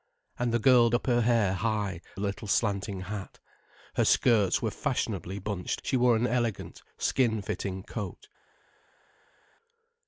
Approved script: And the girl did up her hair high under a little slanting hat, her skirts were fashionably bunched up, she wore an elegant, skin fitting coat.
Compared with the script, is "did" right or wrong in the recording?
wrong